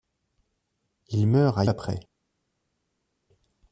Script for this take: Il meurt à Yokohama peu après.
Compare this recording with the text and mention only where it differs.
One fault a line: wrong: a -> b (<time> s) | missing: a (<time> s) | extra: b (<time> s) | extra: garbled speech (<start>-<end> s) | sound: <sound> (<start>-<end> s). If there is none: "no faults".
missing: Yokohama peu (1.6 s)